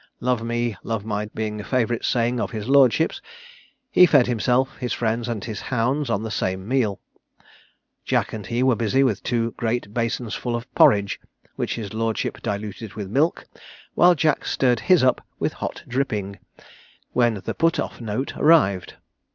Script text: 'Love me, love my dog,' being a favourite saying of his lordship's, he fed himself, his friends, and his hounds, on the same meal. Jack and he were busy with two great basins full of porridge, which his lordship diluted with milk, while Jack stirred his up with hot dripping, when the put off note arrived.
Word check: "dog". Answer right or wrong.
wrong